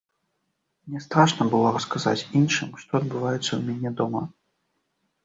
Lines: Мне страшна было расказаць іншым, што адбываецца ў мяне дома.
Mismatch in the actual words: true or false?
false